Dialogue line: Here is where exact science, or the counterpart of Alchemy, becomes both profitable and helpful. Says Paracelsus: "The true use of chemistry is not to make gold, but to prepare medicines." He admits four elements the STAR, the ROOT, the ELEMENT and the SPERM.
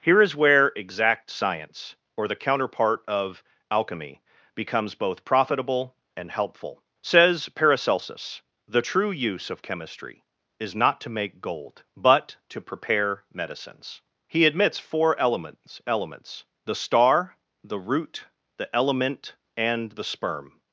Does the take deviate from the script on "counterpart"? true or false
false